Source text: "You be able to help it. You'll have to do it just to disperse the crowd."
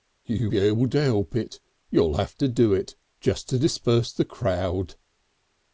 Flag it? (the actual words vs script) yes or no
no